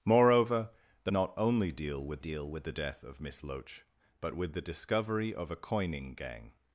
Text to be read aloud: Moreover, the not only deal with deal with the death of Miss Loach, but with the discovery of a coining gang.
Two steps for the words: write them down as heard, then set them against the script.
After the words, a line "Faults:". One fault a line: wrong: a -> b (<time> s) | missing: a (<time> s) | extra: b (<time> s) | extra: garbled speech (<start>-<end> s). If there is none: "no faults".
Moreover, the not only deal with deal with the death of Miss Loach, but with the discovery of a coining gang.
Faults:
no faults